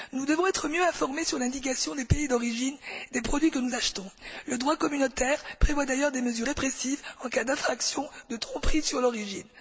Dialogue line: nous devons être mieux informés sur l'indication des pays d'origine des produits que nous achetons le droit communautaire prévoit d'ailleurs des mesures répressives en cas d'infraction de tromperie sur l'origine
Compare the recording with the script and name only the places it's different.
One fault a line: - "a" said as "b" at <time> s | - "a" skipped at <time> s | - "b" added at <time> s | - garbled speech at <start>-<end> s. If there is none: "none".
none